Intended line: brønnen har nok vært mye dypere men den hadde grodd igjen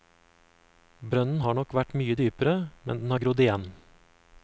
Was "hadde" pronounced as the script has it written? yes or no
no